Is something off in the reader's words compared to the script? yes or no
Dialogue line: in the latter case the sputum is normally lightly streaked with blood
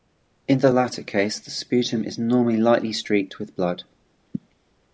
no